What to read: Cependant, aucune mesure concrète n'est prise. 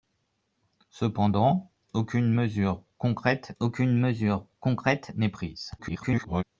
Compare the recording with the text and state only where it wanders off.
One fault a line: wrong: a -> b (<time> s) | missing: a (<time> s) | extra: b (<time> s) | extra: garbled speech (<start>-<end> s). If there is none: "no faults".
extra: aucune mesure concrète (3.6 s)
extra: garbled speech (5.8-6.4 s)